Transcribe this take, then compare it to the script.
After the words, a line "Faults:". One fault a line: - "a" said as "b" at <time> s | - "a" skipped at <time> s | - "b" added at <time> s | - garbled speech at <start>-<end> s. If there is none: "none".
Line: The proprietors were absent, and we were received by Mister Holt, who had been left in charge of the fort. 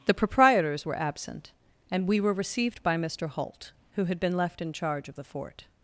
The proprietors were absent, and we were received by Mister Holt, who had been left in charge of the fort.
Faults:
none